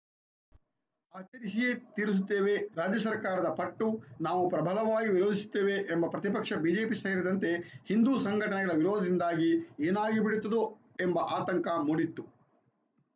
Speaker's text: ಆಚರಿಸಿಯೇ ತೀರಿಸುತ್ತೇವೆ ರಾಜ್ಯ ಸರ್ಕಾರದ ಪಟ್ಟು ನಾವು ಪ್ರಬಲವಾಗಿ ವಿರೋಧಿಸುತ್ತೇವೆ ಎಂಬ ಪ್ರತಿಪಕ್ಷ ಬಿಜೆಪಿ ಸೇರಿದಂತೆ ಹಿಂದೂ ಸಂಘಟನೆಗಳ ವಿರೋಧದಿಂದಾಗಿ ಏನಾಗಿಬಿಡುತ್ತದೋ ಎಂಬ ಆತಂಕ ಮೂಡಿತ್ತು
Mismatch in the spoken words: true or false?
false